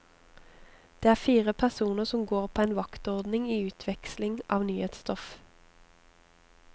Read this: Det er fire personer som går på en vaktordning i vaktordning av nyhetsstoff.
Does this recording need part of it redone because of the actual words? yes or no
yes